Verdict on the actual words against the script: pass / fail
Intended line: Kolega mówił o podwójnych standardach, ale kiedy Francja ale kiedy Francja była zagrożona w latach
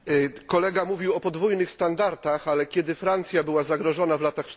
fail